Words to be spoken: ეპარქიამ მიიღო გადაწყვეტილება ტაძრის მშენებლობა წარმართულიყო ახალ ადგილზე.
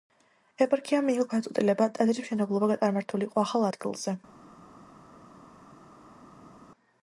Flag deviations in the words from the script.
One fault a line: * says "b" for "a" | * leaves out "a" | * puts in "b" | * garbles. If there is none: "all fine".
all fine